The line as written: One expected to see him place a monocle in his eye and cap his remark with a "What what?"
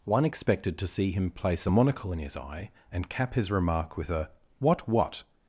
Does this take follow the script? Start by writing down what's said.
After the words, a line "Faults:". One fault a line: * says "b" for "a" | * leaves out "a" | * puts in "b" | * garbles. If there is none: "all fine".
One expected to see him place a monocle in his eye and cap his remark with a "What what?"
Faults:
all fine